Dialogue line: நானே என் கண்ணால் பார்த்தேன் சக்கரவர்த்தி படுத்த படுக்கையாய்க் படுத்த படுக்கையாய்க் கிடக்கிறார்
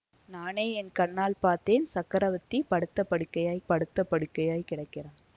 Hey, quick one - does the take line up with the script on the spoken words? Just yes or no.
yes